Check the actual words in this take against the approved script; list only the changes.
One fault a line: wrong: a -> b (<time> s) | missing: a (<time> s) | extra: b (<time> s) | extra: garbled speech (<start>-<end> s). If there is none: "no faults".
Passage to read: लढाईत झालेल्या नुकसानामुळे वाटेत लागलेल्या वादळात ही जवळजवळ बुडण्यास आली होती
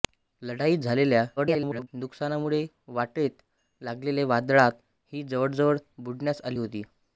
extra: garbled speech (1.4-1.9 s)